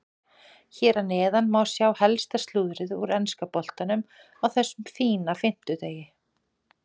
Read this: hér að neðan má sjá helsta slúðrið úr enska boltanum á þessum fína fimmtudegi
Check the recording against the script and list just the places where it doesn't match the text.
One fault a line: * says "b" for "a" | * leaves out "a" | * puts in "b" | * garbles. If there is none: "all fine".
all fine